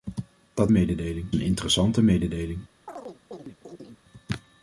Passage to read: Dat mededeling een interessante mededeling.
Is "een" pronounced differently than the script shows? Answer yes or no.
no